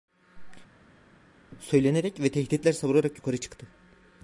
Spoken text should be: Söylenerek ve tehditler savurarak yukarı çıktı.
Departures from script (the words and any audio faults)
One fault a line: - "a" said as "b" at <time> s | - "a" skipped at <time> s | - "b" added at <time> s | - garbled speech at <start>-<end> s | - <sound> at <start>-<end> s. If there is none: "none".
none